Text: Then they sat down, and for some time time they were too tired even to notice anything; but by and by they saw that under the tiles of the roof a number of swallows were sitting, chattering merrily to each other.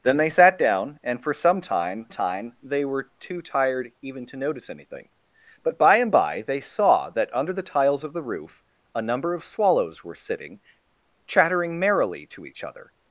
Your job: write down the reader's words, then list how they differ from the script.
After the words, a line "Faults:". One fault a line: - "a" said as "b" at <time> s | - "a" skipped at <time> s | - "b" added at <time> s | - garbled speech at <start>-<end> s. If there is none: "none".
Then they sat down, and for some time time they were too tired even to notice anything; but by and by they saw that under the tiles of the roof a number of swallows were sitting, chattering merrily to each other.
Faults:
none